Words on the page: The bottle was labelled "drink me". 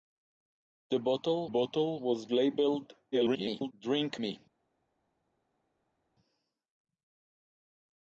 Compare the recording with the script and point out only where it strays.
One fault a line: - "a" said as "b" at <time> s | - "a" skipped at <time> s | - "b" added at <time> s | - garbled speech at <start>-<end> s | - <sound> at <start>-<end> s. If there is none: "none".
- "bottle" added at 1.4 s
- garbled speech at 3.1-3.7 s